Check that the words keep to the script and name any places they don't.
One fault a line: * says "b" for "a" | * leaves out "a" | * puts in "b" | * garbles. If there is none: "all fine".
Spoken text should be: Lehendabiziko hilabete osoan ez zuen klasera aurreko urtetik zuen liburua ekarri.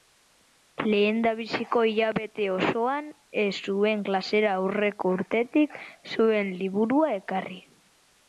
all fine